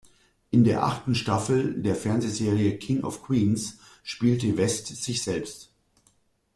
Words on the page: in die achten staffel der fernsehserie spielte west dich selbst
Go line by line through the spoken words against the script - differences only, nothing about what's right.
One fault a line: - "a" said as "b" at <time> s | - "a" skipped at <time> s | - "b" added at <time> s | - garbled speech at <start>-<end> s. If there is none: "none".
- "die" said as "der" at 0.6 s
- "king of queens" added at 2.8 s
- "dich" said as "sich" at 4.9 s